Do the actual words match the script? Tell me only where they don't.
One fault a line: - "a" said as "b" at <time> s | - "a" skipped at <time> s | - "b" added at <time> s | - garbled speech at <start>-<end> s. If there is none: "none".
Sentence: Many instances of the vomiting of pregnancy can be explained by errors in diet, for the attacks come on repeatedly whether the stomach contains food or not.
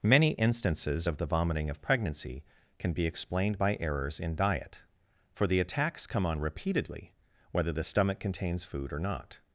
none